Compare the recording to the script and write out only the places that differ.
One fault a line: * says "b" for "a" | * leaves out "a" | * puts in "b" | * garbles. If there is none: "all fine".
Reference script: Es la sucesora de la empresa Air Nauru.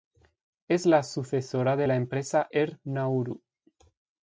all fine